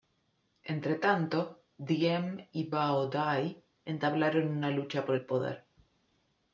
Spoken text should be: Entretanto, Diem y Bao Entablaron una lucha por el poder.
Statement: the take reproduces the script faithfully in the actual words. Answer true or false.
false